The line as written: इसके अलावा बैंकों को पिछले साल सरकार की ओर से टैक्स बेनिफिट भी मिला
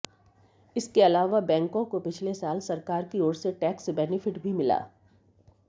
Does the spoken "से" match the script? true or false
true